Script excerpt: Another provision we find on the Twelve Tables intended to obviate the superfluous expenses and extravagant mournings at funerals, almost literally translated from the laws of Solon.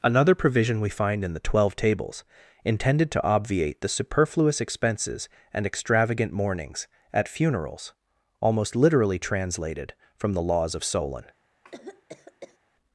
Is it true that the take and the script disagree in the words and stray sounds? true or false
true